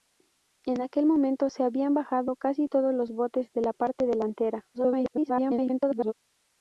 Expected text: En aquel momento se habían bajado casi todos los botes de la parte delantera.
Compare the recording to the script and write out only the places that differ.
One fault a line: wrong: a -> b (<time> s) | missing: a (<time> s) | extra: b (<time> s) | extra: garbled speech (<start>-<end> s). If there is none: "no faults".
extra: garbled speech (4.7-6.1 s)